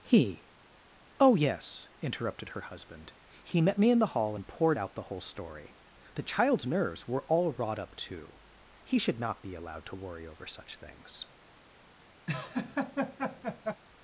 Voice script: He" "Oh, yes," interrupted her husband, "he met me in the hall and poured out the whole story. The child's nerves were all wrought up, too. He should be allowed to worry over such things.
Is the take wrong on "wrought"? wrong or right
right